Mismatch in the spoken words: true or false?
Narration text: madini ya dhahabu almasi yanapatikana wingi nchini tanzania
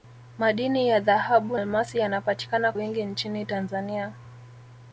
false